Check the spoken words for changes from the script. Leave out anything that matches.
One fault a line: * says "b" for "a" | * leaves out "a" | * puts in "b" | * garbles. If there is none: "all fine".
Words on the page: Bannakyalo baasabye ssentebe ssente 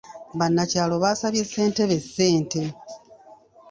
all fine